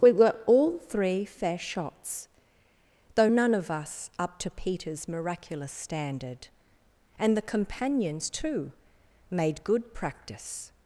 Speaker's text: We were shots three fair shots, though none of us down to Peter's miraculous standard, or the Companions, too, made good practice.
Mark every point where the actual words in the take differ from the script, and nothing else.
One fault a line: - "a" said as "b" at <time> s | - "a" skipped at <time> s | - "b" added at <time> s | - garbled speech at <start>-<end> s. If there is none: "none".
- "shots" said as "all" at 0.5 s
- "down" said as "up" at 4.2 s
- "or" said as "and" at 7.2 s